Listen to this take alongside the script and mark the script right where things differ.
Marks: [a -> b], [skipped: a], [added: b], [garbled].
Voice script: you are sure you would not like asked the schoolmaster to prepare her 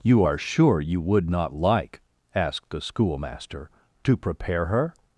you are sure you would not like asked the schoolmaster to prepare her